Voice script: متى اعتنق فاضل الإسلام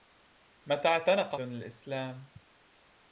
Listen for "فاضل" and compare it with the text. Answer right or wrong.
wrong